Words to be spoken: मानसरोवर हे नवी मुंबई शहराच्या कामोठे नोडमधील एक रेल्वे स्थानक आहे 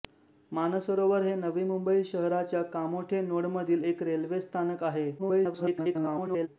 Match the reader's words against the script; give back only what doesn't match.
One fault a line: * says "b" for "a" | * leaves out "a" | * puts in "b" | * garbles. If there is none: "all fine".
* garbles